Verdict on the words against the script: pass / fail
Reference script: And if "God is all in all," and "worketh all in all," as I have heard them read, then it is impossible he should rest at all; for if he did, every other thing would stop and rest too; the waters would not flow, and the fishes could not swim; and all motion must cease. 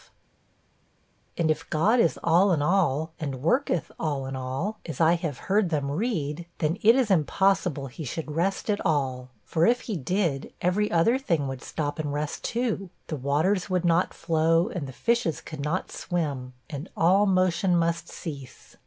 pass